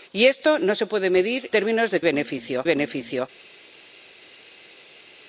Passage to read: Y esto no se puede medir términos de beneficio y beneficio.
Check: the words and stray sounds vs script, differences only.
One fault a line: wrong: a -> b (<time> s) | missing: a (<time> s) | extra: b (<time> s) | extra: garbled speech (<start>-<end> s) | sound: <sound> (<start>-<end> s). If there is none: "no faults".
no faults